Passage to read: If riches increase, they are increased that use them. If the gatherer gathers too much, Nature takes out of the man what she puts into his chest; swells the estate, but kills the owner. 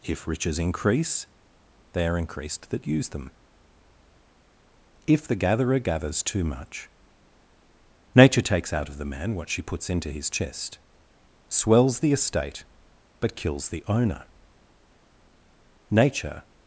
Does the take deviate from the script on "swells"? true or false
false